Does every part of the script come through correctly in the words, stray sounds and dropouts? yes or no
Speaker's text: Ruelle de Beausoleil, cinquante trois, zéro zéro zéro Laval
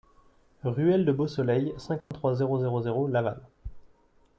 no